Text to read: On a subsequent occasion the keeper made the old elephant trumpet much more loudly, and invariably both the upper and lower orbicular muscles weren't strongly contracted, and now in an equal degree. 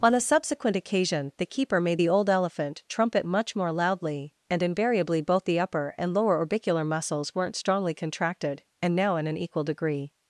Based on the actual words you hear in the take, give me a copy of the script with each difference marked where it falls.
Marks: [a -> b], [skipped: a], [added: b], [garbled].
On a subsequent occasion the keeper made the old elephant trumpet much more loudly, and invariably both the upper and lower orbicular muscles weren't strongly contracted, and now in an equal degree.